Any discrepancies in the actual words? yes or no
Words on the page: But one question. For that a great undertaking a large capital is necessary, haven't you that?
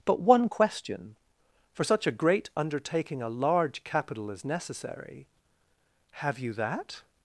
yes